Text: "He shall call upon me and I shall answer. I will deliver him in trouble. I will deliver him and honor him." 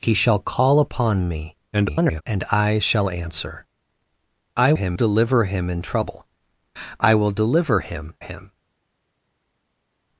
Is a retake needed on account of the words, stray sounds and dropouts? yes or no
yes